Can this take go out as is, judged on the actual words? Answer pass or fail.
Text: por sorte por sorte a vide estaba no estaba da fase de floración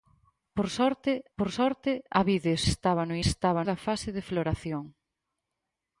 pass